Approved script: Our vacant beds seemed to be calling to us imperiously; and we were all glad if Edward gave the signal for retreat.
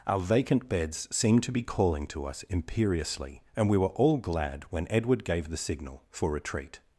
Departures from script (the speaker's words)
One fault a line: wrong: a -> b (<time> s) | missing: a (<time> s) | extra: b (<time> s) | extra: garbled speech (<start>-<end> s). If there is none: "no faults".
wrong: if -> when (4.7 s)